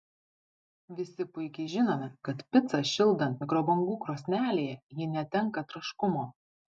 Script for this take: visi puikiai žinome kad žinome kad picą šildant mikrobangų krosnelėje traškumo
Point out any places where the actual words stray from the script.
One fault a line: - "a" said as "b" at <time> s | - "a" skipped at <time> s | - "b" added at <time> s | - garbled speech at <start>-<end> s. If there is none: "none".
- "žinome kad" skipped at 2.4 s
- "ji netenka" added at 5.0 s